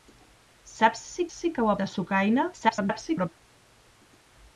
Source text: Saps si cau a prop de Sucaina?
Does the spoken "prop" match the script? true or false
false